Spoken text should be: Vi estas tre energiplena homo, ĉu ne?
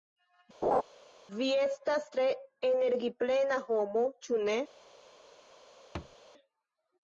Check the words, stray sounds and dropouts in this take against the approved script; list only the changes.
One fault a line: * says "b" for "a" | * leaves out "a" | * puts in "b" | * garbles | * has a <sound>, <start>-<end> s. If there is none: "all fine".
* has a laugh, 0.6-0.8 s
* has a thud, 5.9-6.2 s